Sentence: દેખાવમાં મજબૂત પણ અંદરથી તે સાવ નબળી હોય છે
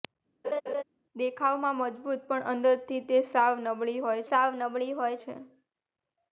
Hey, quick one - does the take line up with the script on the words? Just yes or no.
no